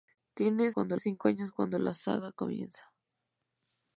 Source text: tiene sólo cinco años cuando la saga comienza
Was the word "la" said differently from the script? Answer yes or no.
no